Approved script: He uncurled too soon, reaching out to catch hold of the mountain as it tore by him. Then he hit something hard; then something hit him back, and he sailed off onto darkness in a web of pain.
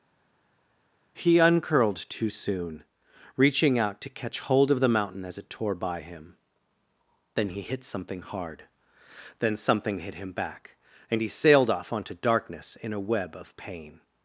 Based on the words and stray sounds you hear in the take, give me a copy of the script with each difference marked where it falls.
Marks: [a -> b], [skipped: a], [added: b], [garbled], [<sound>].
He uncurled too soon, reaching out to catch hold of the mountain as it tore by him. Then he hit something hard; then something hit him back, and he sailed off onto darkness in a web of pain.